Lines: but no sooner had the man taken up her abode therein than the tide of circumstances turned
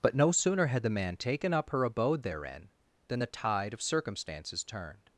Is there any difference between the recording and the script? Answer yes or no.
no